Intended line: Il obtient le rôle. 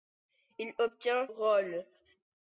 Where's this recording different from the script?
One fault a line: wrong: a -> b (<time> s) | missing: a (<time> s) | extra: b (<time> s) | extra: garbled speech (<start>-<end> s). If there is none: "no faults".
missing: le (1.3 s)